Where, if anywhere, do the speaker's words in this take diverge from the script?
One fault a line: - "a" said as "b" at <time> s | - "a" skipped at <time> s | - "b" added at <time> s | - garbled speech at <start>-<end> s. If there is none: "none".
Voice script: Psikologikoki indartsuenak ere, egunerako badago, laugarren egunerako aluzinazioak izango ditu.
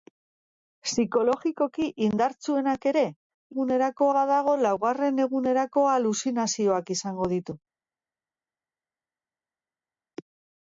none